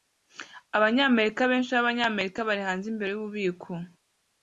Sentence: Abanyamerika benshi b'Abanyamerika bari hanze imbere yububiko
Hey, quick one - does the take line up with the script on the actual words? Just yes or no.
yes